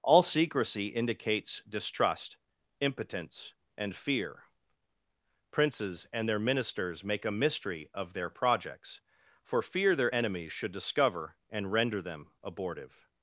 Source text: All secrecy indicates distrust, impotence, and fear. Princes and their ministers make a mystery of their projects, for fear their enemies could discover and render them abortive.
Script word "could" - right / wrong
wrong